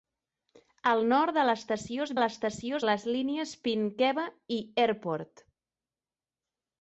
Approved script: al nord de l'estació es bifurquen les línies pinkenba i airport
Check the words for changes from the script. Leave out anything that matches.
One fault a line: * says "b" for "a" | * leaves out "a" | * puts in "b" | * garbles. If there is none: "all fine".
* says "l'estació" for "bifurquen"